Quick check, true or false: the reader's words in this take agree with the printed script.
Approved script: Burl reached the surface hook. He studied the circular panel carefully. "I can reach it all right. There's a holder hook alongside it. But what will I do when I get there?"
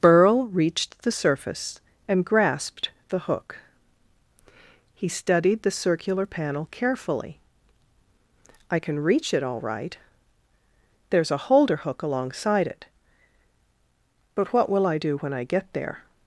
false